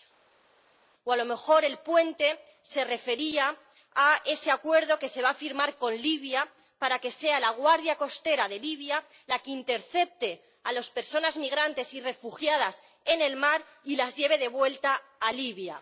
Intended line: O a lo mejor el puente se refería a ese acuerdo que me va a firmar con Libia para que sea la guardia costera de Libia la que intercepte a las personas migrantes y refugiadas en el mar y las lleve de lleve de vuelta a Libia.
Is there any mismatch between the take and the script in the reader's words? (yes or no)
yes